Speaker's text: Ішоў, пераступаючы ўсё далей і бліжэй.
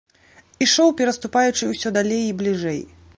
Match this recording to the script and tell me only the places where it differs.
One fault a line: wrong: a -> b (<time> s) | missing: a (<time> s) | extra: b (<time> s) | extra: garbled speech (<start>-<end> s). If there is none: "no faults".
no faults